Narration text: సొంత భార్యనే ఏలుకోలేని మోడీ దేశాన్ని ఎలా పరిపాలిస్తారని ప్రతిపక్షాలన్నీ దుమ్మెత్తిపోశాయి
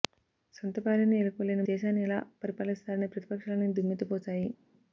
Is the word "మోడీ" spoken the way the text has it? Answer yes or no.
no